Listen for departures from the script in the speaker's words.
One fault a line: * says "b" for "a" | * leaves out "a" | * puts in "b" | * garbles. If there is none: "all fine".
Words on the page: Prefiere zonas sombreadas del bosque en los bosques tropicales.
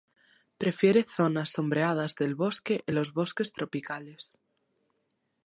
all fine